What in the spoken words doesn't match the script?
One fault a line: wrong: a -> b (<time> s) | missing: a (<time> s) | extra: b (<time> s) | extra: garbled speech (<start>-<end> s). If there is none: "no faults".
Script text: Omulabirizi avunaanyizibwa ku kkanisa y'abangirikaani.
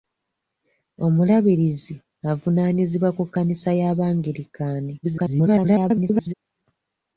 extra: garbled speech (5.0-6.3 s)